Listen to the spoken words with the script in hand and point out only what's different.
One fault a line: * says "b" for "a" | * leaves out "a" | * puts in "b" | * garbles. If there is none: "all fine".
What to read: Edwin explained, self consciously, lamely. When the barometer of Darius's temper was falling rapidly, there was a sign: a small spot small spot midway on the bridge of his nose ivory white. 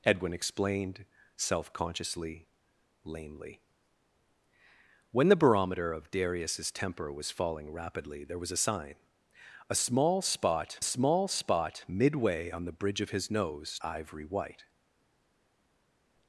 all fine